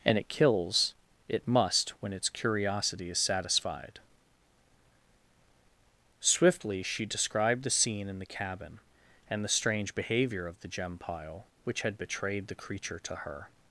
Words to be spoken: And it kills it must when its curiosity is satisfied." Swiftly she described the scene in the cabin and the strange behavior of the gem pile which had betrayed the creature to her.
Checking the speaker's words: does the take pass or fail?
pass